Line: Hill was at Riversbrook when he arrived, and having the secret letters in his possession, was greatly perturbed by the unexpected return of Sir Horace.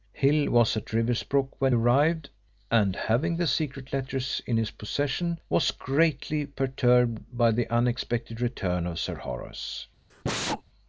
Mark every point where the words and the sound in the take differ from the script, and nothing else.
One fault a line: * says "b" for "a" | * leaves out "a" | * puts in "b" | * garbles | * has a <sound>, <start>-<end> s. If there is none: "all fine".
* leaves out "he"
* has a sneeze, 10.1-10.6 s